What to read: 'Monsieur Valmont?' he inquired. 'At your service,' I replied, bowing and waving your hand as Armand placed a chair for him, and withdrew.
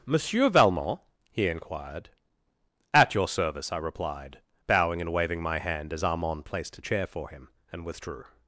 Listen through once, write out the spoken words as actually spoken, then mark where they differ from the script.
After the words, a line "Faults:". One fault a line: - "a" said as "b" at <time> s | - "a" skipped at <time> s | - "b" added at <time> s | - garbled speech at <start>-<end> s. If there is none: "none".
'Monsieur Valmont?' he inquired. 'At your service,' I replied, bowing and waving my hand as Armand placed a chair for him, and withdrew.
Faults:
- "your" said as "my" at 5.4 s